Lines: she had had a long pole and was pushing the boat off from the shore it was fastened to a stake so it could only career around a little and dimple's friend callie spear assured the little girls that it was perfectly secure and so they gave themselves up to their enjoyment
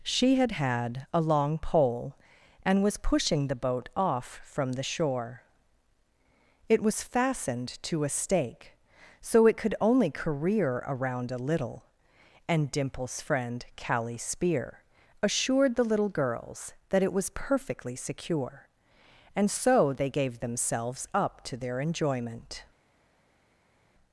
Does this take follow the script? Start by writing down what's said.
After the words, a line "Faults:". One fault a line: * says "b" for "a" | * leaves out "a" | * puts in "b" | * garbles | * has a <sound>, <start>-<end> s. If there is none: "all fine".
she had had a long pole and was pushing the boat off from the shore it was fastened to a stake so it could only career around a little and dimple's friend callie spear assured the little girls that it was perfectly secure and so they gave themselves up to their enjoyment
Faults:
all fine